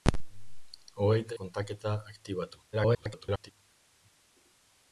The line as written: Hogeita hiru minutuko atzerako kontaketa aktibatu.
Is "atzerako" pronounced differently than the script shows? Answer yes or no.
yes